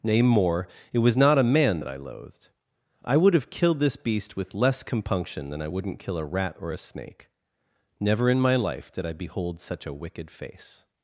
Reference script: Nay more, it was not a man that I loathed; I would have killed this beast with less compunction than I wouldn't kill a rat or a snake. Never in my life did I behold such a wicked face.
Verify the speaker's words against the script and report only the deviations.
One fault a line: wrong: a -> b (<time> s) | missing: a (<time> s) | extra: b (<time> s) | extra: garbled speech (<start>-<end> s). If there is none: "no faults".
no faults